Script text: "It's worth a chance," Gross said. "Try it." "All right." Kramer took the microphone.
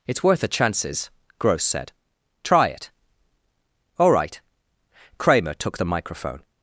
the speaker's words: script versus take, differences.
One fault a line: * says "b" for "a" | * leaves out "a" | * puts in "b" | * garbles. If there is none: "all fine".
* says "chances" for "chance"